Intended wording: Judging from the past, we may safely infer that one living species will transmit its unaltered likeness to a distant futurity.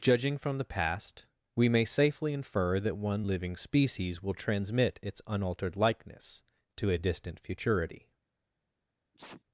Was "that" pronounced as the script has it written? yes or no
yes